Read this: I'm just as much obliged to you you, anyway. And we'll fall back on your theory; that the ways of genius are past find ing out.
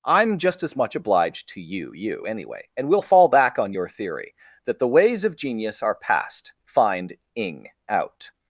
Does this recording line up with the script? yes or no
yes